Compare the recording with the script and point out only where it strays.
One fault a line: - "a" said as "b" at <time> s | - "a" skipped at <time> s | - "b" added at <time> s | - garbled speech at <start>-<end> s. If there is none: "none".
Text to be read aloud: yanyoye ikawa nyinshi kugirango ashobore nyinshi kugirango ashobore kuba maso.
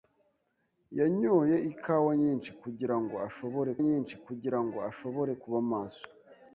none